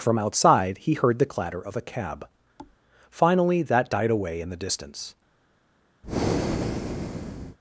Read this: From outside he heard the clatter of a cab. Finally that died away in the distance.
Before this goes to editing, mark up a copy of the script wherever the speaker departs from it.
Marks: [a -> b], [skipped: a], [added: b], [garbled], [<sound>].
From outside he heard the clatter of a cab. [thud] Finally that died away in the distance. [breath]